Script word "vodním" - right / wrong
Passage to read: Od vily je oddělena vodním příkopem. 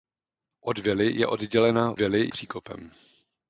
wrong